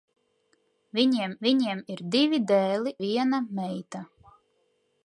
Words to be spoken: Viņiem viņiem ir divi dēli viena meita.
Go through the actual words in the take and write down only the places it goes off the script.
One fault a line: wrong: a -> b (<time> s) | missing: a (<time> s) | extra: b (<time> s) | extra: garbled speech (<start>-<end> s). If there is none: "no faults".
no faults